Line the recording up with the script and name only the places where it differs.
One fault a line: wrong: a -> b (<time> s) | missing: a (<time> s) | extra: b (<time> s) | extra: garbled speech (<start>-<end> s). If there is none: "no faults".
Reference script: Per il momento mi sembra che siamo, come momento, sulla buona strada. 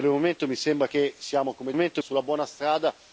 no faults